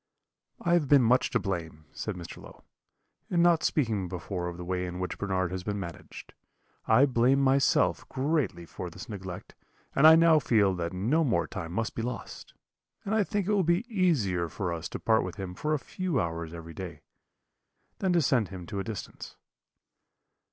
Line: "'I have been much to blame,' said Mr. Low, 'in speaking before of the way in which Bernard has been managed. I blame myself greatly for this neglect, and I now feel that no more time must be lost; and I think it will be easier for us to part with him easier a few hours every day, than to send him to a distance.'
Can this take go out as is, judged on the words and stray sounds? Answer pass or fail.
fail